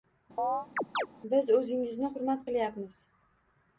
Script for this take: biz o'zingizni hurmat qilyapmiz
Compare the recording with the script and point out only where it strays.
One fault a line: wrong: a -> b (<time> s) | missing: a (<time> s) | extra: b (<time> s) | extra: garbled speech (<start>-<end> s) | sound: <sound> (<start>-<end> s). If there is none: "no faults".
sound: chirp (0.4-1.1 s)